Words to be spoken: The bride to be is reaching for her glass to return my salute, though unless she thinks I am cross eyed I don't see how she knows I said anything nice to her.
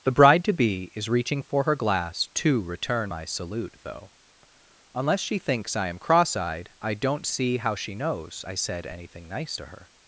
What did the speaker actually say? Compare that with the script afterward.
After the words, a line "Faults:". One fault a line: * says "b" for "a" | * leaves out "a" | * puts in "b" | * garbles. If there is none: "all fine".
The bride to be is reaching for her glass to return my salute, though unless she thinks I am cross eyed I don't see how she knows I said anything nice to her.
Faults:
all fine